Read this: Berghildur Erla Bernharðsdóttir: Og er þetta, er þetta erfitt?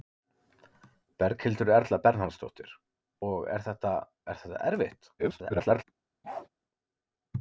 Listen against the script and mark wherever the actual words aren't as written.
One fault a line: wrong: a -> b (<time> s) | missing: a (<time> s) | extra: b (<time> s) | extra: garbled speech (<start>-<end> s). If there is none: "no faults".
extra: garbled speech (5.2-5.8 s)